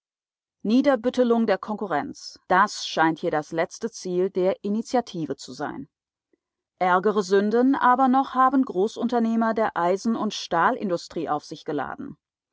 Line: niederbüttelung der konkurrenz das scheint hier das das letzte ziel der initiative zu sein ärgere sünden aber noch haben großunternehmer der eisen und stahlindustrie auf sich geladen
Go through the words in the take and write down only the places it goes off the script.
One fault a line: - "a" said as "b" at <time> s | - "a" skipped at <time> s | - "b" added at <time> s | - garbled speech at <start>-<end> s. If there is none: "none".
- "das" skipped at 3.5 s